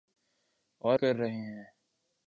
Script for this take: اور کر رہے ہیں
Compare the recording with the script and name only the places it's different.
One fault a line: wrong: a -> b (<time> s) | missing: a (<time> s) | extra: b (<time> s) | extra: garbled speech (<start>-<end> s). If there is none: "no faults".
no faults